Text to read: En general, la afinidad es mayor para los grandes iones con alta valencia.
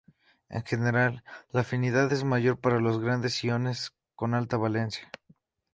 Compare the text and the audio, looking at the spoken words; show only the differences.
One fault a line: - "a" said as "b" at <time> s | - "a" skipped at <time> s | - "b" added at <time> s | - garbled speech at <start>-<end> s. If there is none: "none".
none